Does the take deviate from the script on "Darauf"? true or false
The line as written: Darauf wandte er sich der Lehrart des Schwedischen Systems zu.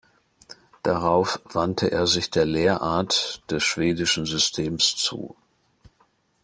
false